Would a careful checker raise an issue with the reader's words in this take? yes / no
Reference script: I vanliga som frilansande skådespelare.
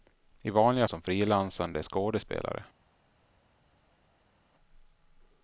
no